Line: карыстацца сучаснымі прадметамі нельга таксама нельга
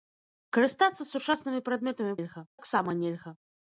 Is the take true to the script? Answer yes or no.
yes